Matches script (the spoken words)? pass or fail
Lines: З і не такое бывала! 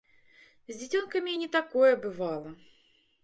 fail